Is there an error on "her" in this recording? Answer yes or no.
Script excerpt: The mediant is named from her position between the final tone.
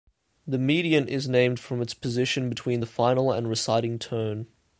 yes